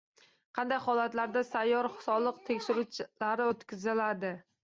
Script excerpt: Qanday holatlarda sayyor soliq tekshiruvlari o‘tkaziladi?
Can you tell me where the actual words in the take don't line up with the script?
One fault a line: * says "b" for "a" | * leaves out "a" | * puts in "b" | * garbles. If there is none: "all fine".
all fine